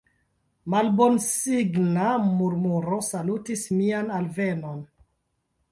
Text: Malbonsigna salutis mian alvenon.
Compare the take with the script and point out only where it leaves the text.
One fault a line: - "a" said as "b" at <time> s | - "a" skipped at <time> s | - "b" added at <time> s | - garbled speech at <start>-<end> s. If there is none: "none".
- "murmuro" added at 2.4 s